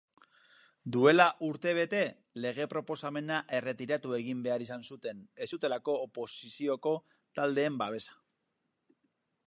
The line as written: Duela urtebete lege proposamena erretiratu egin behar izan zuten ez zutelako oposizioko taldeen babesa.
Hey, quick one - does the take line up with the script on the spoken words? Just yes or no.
yes